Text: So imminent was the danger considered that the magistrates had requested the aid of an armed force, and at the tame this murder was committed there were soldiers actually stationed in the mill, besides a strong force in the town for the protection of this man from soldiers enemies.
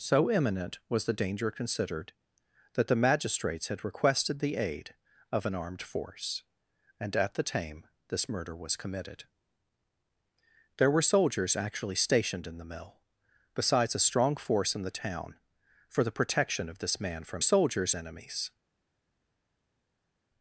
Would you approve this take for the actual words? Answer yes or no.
yes